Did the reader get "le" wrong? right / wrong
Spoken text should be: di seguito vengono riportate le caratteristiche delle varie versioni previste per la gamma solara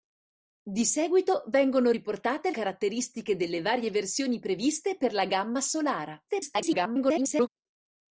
wrong